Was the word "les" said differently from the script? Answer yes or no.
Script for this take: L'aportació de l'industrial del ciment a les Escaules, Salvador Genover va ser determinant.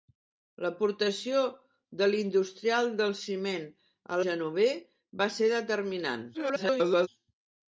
yes